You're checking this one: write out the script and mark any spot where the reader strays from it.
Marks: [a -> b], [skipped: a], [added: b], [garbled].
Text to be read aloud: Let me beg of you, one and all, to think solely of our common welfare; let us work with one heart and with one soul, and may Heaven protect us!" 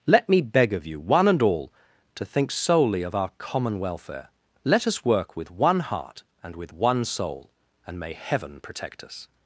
Let me beg of you, one and all, to think solely of our common welfare; let us work with one heart and with one soul, and may Heaven protect us!"